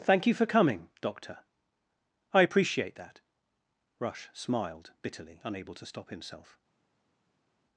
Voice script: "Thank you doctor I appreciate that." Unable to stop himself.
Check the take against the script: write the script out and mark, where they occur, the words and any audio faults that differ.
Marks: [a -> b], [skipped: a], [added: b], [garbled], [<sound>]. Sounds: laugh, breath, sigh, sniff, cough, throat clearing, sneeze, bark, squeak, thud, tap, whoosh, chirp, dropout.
"Thank you [added: for coming] doctor I appreciate that." [added: Rush smiled bitterly] Unable to stop himself.